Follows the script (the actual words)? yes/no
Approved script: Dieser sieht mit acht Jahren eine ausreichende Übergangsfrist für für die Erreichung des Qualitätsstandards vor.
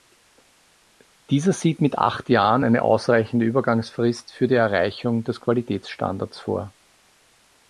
no